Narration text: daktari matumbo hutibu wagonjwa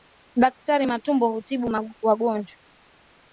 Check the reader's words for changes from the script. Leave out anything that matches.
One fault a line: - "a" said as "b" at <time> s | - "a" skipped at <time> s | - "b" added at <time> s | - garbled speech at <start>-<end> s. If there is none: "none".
none